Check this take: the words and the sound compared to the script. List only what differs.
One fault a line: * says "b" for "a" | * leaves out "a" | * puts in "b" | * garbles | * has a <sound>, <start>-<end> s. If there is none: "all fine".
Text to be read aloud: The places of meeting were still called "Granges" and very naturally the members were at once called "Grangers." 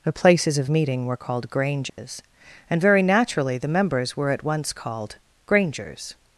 * leaves out "still"
* has a dropout, 1.9-2.0 s